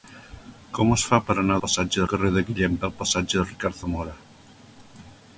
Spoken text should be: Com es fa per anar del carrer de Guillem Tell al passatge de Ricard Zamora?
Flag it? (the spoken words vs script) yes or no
yes